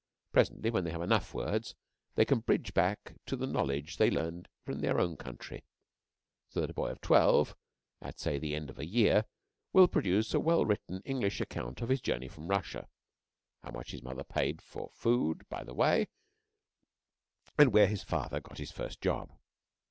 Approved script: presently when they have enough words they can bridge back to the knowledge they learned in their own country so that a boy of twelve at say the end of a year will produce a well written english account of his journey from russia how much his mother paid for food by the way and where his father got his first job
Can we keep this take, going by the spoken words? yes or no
yes